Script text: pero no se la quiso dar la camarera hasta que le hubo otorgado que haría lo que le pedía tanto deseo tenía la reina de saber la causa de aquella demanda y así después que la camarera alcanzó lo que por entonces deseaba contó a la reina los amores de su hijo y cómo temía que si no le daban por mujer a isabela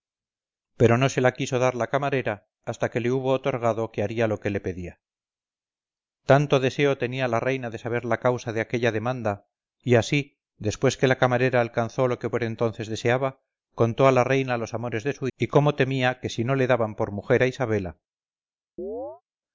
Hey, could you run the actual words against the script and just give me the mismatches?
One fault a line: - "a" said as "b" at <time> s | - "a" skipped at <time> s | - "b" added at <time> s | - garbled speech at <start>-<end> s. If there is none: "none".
- "hijo" skipped at 15.3 s